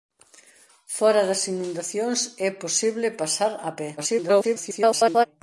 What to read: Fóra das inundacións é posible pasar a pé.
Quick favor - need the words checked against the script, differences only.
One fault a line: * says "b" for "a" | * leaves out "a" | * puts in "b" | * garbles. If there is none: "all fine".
* garbles